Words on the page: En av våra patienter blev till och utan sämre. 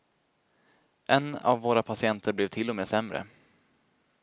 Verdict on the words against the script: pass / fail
fail